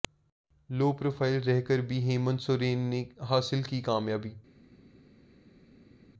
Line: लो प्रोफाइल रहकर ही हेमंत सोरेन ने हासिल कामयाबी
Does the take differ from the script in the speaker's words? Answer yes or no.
yes